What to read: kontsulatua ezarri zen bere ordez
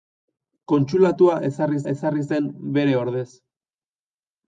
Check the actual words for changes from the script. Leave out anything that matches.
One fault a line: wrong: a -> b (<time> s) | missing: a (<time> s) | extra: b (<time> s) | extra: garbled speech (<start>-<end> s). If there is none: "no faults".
extra: ezarri (1.9 s)